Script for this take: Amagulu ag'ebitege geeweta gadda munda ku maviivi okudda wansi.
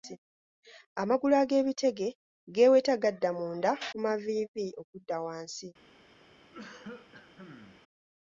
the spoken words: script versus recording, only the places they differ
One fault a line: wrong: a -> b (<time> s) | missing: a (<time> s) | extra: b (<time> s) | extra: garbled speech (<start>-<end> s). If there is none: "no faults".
no faults